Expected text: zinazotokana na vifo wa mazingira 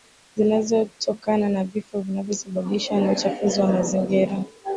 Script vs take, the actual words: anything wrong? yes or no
yes